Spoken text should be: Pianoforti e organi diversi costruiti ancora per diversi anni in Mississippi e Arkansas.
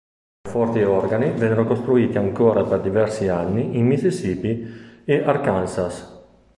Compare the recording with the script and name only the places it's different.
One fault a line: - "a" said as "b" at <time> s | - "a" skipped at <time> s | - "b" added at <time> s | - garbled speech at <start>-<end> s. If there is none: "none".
- "diversi" said as "vennero" at 1.3 s